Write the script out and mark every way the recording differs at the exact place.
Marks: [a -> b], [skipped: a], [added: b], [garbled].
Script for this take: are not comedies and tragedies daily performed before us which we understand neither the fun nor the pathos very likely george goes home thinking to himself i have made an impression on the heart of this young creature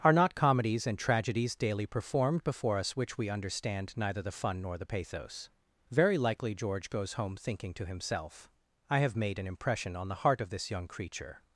are not comedies and tragedies daily performed before us which we understand neither the fun nor the pathos very likely george goes home thinking to himself i have made an impression on the heart of this young creature